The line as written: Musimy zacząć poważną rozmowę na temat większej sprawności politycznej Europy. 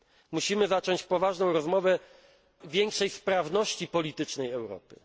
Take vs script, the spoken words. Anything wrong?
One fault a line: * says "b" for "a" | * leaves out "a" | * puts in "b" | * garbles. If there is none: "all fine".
* leaves out "na temat"